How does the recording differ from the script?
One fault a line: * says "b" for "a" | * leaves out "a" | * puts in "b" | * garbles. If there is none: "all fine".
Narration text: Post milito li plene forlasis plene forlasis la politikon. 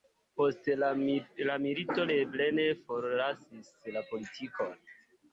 * puts in "la"
* leaves out "plene forlasis"